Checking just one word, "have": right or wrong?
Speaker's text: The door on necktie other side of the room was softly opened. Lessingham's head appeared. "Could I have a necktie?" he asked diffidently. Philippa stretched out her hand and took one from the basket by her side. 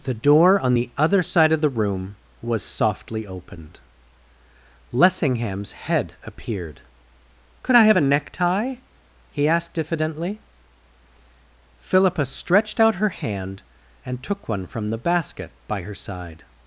right